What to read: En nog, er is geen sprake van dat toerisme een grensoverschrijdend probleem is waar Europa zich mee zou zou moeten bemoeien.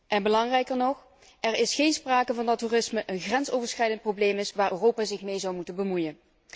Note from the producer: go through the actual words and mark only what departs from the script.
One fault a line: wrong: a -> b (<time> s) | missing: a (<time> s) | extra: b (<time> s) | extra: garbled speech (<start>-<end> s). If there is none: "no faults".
extra: belangrijker (0.2 s)
missing: zou (5.5 s)